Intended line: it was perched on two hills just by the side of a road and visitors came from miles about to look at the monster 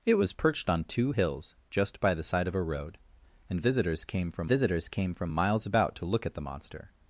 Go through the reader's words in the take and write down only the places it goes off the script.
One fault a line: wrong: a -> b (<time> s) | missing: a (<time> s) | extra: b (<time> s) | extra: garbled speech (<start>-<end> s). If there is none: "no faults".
extra: visitors came from (4.4 s)